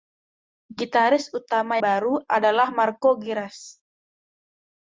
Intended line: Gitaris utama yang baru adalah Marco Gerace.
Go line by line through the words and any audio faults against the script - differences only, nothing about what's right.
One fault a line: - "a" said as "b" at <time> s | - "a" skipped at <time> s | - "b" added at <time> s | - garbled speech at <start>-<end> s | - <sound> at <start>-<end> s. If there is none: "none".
- "yang" skipped at 1.8 s